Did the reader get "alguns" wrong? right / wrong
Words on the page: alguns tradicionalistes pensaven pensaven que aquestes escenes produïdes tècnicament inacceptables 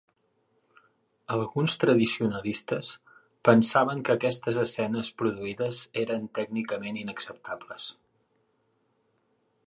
right